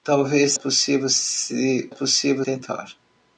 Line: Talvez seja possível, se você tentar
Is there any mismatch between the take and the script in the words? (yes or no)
yes